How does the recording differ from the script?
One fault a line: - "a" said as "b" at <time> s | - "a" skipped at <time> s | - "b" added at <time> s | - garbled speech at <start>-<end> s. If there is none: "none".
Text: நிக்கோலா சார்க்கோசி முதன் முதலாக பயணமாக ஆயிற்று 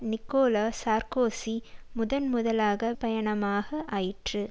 none